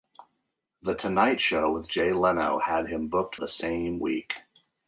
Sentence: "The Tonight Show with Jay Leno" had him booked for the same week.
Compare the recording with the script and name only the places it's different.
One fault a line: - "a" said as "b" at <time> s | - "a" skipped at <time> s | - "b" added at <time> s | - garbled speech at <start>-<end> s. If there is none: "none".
- "for" skipped at 3.4 s